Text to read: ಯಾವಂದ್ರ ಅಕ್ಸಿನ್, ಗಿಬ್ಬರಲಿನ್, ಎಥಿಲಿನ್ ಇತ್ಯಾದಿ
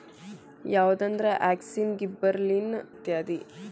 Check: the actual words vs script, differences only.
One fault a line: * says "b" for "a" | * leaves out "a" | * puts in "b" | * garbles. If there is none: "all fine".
* leaves out "ಎಥಿಲಿನ್"